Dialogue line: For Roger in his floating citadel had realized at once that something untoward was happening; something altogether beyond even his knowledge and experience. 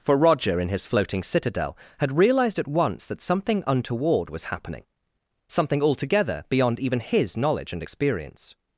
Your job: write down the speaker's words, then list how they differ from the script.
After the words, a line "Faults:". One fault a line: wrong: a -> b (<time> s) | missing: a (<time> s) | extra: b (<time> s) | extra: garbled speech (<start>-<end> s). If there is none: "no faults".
For Roger in his floating citadel had realized at once that something untoward was happening; something altogether beyond even his knowledge and experience.
Faults:
no faults